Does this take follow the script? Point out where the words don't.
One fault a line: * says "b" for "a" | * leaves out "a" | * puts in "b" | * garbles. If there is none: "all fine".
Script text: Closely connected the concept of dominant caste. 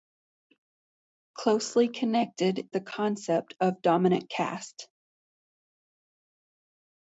all fine